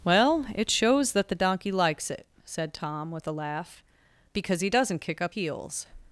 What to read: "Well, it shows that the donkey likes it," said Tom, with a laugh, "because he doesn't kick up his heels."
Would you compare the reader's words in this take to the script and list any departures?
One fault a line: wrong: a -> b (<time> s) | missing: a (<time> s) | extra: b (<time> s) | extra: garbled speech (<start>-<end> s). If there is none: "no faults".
missing: his (5.3 s)